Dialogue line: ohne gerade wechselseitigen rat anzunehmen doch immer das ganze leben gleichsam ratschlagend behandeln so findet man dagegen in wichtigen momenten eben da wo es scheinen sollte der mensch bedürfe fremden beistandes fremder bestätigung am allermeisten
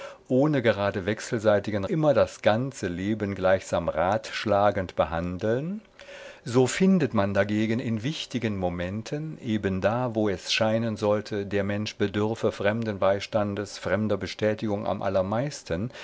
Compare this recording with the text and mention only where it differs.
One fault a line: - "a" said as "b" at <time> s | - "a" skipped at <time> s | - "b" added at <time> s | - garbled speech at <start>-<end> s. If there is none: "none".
- "rat anzunehmen doch" skipped at 1.8 s